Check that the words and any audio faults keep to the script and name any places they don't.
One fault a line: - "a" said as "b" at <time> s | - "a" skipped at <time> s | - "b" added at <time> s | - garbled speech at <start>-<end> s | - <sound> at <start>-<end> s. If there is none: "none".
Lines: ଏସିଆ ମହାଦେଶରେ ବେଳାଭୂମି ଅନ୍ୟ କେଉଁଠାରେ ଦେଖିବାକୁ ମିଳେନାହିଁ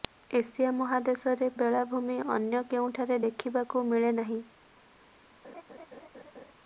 - laugh at 5.4-6.5 s